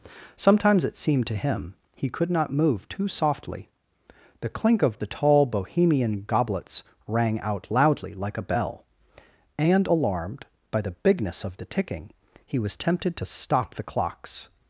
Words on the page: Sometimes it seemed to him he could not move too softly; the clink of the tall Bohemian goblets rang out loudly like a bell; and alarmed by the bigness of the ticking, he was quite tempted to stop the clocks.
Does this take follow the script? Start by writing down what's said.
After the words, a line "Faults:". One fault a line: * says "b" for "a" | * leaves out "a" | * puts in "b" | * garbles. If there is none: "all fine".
Sometimes it seemed to him he could not move too softly; the clink of the tall Bohemian goblets rang out loudly like a bell; and alarmed by the bigness of the ticking, he was tempted to stop the clocks.
Faults:
* leaves out "quite"